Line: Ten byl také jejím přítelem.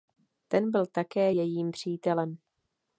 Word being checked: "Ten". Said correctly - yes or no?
yes